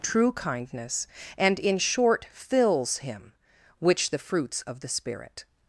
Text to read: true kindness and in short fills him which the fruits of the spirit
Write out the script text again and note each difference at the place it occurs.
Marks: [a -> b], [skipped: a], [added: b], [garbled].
true kindness and in short fills him which the fruits of the spirit